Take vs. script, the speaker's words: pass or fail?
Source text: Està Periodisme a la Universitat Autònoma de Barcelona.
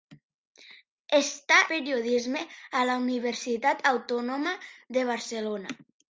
pass